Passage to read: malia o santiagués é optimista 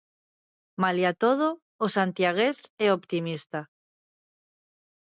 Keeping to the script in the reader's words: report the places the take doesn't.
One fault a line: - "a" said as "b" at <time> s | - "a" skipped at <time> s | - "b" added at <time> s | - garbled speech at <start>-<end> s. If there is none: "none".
- "todo" added at 1.2 s